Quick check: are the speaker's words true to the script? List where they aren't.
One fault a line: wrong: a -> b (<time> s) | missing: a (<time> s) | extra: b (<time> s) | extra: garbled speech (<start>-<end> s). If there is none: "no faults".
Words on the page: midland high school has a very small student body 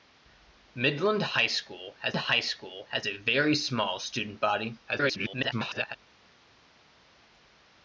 extra: high school has (2.2 s)
extra: garbled speech (4.9-6.0 s)